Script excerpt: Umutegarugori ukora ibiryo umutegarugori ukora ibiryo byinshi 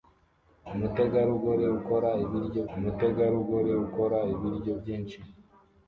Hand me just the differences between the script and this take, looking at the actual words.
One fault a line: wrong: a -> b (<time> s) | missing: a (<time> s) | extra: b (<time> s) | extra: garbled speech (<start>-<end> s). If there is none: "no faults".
no faults